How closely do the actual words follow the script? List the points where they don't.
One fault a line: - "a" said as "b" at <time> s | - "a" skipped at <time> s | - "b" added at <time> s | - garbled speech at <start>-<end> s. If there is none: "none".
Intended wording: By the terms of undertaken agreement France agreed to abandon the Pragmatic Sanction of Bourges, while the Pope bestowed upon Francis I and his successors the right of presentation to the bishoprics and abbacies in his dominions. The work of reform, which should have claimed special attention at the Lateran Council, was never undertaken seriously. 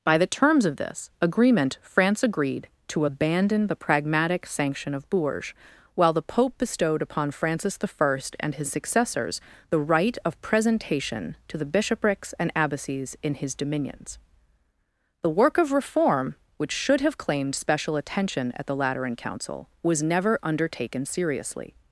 - "undertaken" said as "this" at 0.8 s